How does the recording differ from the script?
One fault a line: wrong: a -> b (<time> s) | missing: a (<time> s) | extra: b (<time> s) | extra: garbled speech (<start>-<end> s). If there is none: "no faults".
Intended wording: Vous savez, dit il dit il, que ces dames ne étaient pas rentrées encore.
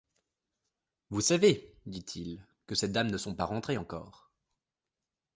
missing: dit il (2.4 s)
wrong: étaient -> sont (3.2 s)